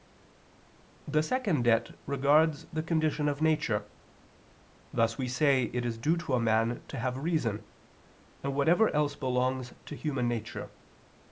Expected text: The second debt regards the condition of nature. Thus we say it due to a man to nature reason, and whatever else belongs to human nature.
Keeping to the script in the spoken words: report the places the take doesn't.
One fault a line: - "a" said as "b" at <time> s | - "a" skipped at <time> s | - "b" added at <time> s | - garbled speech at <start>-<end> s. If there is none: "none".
- "is" added at 5.8 s
- "nature" said as "have" at 7.0 s